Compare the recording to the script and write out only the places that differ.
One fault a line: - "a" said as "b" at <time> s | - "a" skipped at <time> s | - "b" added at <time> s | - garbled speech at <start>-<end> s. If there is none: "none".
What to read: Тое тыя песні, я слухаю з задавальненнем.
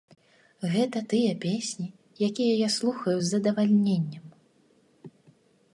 - "Тое" said as "Гэта" at 0.8 s
- "якія" added at 2.3 s